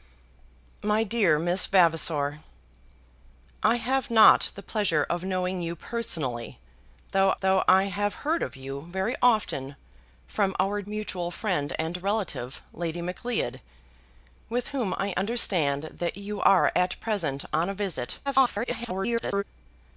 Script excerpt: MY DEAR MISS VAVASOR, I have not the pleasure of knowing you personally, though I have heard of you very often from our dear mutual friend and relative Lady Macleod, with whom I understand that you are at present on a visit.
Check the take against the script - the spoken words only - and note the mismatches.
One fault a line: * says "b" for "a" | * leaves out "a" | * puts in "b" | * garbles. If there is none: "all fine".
* puts in "though"
* leaves out "dear"
* garbles